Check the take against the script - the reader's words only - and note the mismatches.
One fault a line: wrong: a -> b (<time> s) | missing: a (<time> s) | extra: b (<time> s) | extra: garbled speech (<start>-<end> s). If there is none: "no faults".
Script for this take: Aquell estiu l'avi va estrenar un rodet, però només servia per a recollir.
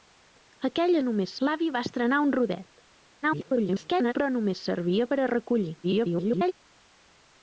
wrong: estiu -> només (1.1 s)
extra: garbled speech (3.2-4.1 s)
extra: garbled speech (5.8-6.5 s)